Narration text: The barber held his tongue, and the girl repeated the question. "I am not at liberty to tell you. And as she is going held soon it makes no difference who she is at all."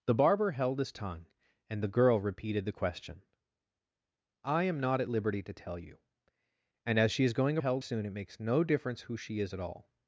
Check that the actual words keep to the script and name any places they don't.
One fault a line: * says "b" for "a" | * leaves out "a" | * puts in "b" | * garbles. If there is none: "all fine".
all fine